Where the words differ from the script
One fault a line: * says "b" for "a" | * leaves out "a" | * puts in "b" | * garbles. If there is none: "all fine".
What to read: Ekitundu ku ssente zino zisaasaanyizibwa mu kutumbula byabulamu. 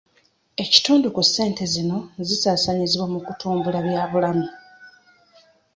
all fine